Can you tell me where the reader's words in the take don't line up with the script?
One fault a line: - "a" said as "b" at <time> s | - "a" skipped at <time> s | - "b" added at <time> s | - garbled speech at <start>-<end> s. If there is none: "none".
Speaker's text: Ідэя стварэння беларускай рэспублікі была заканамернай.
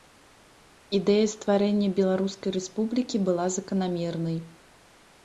none